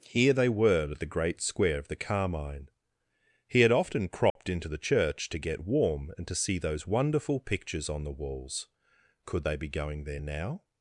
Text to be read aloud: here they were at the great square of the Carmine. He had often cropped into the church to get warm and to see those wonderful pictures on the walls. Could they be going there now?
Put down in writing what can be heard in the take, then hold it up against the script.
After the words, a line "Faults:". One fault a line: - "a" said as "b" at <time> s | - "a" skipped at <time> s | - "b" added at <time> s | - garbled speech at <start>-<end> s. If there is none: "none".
here they were at the great square of the Carmine. He had often cropped into the church to get warm and to see those wonderful pictures on the walls. Could they be going there now?
Faults:
none